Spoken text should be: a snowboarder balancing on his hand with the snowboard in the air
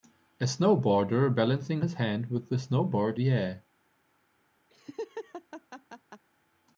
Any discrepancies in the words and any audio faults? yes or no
yes